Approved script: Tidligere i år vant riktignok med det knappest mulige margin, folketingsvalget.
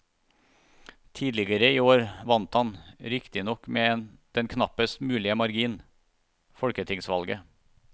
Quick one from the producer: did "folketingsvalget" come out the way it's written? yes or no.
yes